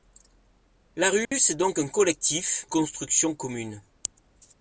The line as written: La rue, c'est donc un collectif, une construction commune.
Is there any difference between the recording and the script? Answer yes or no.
yes